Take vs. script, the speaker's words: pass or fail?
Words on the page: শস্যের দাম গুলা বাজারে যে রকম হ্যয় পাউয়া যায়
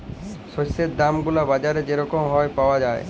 pass